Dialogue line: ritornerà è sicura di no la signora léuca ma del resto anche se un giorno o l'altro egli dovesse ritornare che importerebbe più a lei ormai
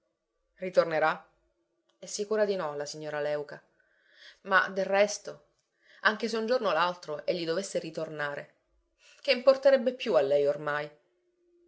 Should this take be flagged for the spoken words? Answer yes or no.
no